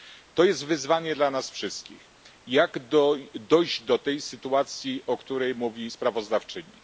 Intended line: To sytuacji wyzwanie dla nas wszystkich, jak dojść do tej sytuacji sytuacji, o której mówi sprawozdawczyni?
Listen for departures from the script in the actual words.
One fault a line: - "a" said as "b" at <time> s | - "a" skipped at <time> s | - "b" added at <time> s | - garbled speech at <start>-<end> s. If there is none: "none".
- "sytuacji" said as "jest" at 0.4 s
- "sytuacji" skipped at 5.0 s